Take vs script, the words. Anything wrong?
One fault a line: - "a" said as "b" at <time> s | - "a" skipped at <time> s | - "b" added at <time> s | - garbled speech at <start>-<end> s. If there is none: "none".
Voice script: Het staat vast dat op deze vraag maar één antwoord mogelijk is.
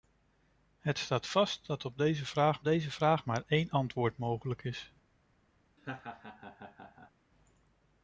- "deze vraag" added at 2.6 s